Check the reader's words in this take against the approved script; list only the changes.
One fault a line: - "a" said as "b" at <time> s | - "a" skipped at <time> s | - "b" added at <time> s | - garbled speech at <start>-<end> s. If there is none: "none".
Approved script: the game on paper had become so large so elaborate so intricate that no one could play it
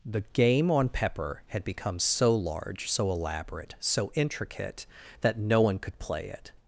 - "paper" said as "pepper" at 0.9 s